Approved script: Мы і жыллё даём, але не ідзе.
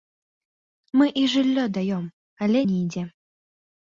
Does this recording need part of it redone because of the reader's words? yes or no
no